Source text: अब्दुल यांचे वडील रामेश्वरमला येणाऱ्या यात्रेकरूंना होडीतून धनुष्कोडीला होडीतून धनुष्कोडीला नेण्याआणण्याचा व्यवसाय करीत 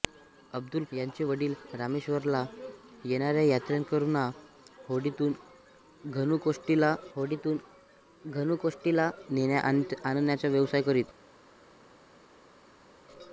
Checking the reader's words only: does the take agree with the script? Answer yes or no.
yes